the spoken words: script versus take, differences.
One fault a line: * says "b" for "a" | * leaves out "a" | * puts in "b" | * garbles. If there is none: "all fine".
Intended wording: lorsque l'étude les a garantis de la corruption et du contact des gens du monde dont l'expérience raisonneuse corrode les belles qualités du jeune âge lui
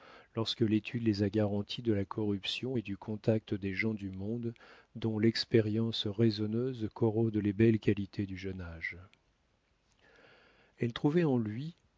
* puts in "elle trouvait en"